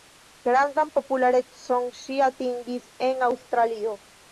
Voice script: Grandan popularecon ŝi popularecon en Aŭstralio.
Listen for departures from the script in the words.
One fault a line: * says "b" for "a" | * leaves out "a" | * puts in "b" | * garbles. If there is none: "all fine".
* says "atingis" for "popularecon"